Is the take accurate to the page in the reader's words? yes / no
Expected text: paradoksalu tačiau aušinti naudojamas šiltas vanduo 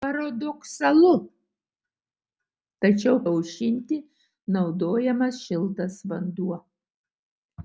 yes